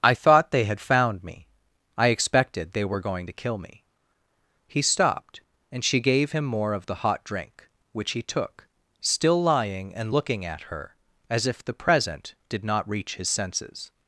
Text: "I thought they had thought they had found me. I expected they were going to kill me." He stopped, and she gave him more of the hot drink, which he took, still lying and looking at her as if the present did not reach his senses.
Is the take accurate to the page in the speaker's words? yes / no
no